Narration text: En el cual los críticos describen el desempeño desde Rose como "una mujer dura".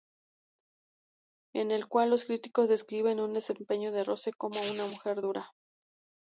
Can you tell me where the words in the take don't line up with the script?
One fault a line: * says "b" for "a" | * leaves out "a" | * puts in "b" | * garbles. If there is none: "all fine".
* says "de" for "desde"